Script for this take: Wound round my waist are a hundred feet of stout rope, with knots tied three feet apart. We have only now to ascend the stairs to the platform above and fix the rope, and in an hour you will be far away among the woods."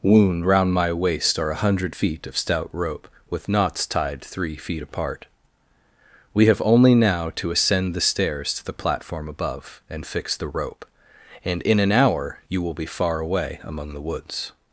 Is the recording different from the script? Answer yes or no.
no